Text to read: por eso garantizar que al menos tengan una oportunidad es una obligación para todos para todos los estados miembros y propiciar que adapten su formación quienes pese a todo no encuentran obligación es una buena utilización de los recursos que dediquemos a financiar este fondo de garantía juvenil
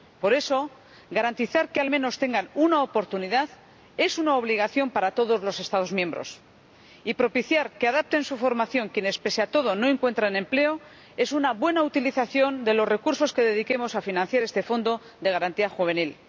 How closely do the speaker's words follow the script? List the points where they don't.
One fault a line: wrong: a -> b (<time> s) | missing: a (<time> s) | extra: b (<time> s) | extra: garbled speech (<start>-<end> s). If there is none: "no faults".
missing: para todos (5.4 s)
wrong: obligación -> empleo (10.4 s)